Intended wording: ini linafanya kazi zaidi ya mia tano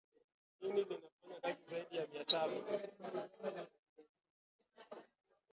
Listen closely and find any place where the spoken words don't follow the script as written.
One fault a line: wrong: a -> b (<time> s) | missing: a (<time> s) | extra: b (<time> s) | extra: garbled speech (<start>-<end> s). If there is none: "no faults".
no faults